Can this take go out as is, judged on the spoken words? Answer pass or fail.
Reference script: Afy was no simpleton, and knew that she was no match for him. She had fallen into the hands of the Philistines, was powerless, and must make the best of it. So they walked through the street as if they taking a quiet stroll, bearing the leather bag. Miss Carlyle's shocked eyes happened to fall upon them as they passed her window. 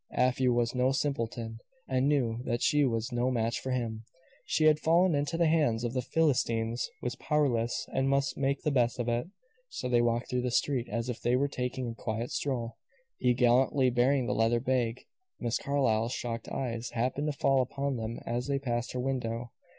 fail